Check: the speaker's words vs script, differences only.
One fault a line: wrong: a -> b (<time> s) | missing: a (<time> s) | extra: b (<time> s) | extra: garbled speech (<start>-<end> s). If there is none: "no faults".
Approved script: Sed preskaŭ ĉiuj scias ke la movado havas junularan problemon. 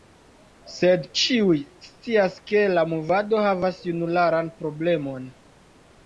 missing: preskaŭ (1.0 s)